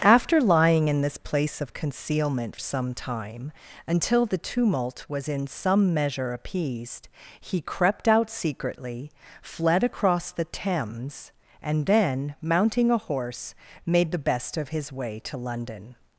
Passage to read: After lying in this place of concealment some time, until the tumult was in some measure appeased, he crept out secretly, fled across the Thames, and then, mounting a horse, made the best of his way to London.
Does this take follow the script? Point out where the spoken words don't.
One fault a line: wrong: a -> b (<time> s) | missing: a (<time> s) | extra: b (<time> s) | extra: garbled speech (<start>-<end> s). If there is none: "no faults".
no faults